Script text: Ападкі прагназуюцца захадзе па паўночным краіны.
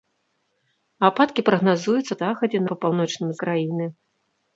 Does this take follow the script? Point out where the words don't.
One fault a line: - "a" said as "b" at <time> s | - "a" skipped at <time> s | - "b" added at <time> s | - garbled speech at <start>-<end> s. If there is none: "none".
none